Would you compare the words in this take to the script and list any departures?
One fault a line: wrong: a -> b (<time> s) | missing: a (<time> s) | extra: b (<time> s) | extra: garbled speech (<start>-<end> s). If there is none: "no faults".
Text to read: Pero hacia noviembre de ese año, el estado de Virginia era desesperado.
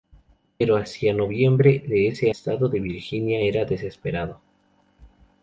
missing: año el (2.3 s)